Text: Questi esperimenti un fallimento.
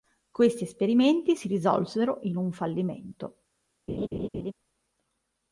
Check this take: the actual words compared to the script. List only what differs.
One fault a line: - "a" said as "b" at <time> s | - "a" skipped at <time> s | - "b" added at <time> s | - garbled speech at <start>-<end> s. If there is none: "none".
- "si risolsero in" added at 1.3 s